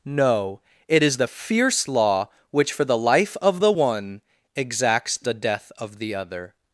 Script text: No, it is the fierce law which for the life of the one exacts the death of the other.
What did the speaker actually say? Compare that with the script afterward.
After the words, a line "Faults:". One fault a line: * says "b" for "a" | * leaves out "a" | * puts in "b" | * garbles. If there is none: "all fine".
No, it is the fierce law which for the life of the one exacts the death of the other.
Faults:
all fine